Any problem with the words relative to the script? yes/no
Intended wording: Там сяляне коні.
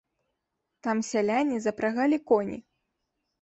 yes